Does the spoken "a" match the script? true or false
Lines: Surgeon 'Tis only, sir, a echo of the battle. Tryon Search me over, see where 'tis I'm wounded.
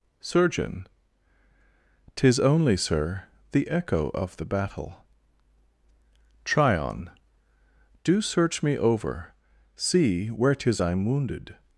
false